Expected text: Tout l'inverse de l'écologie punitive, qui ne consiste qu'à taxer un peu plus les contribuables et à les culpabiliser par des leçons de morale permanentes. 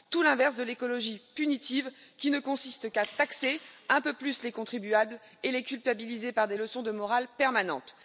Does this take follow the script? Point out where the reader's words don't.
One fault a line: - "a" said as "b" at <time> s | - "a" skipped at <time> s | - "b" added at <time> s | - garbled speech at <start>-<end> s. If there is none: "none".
none